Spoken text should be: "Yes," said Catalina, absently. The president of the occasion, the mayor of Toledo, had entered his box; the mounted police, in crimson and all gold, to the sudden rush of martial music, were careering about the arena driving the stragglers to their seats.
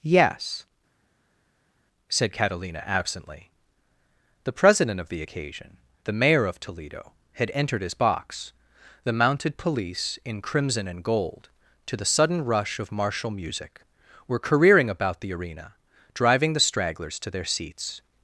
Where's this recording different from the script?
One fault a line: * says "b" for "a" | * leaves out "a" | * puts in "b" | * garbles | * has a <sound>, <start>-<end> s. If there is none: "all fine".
* leaves out "all"